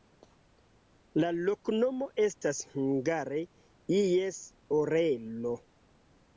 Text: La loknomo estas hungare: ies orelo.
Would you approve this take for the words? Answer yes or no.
yes